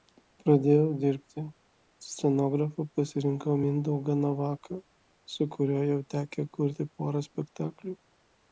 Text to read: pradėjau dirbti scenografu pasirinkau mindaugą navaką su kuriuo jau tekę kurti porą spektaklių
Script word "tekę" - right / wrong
right